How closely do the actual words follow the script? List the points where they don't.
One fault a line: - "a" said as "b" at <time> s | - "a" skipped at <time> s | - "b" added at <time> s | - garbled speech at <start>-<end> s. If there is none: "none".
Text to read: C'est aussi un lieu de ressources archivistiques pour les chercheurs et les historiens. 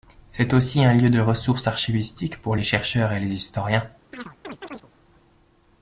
none